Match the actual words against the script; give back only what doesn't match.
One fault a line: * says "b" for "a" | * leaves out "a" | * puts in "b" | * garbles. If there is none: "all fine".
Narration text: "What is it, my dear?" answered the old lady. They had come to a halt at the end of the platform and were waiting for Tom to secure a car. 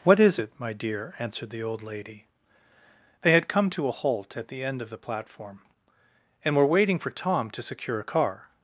all fine